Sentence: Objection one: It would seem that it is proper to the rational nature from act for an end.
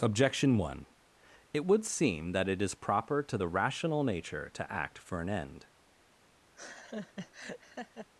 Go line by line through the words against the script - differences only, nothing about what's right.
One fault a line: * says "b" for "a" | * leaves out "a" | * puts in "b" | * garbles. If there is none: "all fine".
* says "to" for "from"